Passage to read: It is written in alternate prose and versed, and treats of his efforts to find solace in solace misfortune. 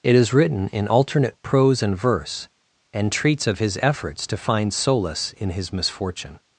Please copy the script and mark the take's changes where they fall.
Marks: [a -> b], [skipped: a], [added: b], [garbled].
It is written in alternate prose and [versed, -> verse] and treats of his efforts to find solace in [solace -> his] misfortune.